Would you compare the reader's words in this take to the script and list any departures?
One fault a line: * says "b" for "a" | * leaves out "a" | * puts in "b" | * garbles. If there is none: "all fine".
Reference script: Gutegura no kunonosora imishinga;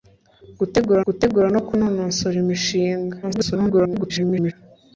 * puts in "gutegura"
* garbles